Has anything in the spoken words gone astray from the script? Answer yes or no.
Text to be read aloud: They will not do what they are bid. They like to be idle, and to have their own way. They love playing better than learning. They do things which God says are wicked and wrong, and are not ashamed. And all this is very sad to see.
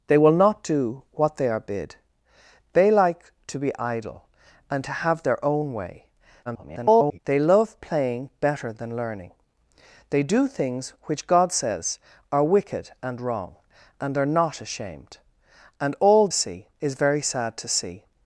yes